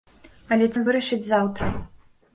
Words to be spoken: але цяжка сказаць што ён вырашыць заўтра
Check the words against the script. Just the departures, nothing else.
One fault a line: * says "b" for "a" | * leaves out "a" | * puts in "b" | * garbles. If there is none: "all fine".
* leaves out "цяжка сказаць што"